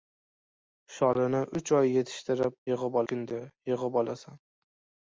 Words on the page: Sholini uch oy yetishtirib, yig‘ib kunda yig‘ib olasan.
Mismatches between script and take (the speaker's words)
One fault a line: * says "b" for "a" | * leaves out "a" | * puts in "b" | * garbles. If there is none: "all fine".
all fine